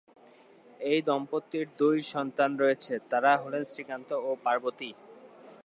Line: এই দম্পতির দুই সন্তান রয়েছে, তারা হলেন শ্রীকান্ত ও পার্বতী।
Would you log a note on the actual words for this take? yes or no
no